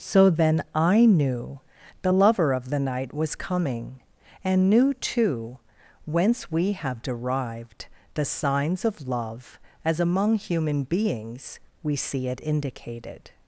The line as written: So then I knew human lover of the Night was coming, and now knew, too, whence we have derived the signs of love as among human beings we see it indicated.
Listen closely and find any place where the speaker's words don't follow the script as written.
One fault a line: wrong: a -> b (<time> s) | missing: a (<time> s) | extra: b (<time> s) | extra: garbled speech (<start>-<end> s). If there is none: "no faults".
wrong: human -> the (2.0 s)
missing: now (4.7 s)